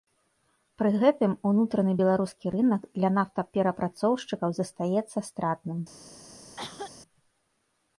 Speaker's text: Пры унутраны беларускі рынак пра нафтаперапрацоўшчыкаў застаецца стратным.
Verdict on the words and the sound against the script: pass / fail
fail